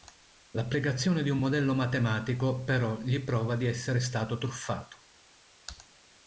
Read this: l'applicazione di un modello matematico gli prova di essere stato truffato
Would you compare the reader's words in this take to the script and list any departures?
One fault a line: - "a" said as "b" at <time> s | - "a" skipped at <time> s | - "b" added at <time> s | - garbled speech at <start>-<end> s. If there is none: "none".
- "però" added at 2.6 s